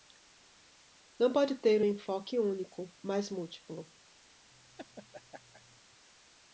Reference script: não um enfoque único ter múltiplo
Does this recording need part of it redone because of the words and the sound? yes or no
yes